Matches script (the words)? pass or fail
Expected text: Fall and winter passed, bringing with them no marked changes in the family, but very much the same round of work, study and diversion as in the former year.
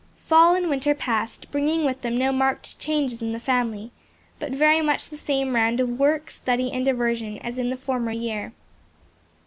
pass